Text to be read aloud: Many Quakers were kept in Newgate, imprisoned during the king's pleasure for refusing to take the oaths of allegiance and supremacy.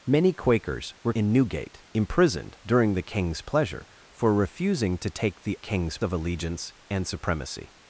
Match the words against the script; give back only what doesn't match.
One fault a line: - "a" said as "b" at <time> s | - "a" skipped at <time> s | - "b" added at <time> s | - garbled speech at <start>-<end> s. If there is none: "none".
- "kept" skipped at 1.1 s
- "oaths" said as "king's" at 5.6 s